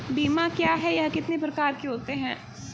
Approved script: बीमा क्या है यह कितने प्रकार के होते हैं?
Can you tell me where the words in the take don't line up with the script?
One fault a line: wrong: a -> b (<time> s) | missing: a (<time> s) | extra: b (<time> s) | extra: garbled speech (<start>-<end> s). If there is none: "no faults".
no faults